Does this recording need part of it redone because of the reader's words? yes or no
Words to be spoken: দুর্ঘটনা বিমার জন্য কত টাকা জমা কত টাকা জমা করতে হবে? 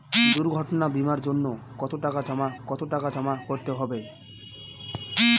no